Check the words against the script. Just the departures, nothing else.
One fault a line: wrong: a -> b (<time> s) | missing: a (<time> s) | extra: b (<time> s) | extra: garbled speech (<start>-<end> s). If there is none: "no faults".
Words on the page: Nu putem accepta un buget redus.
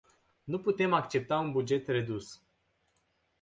no faults